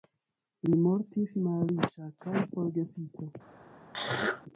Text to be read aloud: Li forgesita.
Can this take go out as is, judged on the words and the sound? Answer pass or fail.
fail